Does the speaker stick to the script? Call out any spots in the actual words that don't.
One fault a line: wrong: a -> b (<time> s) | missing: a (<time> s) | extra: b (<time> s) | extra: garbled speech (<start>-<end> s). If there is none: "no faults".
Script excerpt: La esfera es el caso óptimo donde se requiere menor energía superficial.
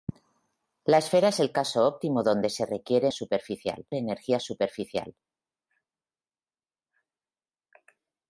wrong: menor -> superficial (3.1 s)